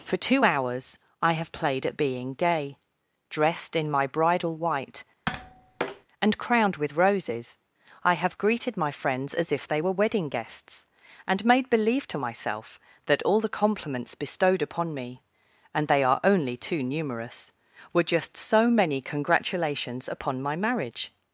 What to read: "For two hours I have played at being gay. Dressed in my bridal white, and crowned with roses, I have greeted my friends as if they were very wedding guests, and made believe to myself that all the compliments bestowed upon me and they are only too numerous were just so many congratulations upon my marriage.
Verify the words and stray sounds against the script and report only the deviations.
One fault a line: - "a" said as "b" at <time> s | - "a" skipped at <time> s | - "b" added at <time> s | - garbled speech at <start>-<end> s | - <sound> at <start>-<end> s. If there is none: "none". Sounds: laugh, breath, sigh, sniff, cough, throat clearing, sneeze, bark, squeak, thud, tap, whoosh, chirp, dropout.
- tap at 5.3-6.1 s
- "very" skipped at 9.9 s